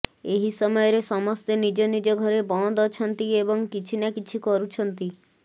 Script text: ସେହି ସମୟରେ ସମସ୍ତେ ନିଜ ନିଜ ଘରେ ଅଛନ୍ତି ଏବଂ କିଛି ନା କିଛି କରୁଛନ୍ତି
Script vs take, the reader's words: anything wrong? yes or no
yes